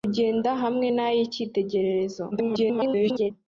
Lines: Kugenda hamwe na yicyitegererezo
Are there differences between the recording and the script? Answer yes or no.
yes